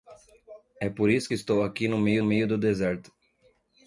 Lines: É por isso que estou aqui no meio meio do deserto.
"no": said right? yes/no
yes